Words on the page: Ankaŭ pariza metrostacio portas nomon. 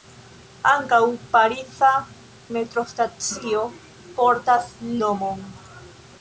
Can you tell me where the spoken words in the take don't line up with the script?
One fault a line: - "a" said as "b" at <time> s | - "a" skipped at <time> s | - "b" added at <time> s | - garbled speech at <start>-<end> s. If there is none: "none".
none